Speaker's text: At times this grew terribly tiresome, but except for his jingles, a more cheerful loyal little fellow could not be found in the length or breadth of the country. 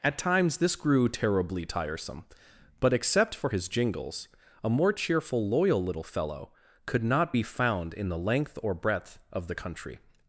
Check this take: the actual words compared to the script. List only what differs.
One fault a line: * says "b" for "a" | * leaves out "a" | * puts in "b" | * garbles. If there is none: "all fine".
all fine